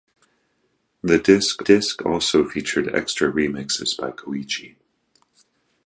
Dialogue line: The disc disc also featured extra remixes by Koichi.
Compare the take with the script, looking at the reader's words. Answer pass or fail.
pass